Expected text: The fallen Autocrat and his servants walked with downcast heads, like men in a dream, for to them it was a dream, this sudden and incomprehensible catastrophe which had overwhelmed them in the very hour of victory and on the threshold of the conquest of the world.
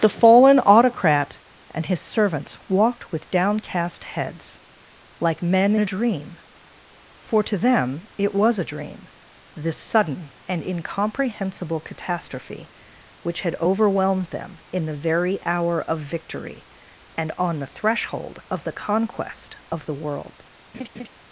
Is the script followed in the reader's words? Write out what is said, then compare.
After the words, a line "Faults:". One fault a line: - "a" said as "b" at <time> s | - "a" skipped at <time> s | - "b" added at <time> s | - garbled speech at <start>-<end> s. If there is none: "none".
The fallen Autocrat and his servants walked with downcast heads, like men a dream, for to them it was a dream, this sudden and incomprehensible catastrophe which had overwhelmed them in the very hour of victory and on the threshold of the conquest of the world.
Faults:
- "in" skipped at 5.8 s